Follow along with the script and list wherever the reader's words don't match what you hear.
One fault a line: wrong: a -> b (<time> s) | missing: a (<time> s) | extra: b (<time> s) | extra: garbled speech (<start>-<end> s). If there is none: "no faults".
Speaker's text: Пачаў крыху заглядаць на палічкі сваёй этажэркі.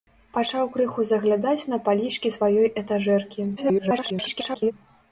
extra: garbled speech (3.6-4.7 s)